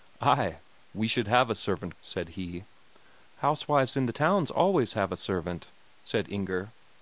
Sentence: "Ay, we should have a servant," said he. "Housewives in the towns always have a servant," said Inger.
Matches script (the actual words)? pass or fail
pass